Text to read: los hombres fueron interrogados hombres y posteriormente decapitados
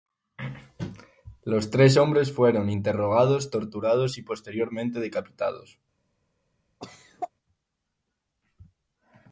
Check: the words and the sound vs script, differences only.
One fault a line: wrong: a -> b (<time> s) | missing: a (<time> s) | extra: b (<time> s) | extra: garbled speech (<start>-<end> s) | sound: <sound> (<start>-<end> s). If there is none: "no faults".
extra: tres (1.7 s)
wrong: hombres -> torturados (3.5 s)
sound: cough (6.8-7.3 s)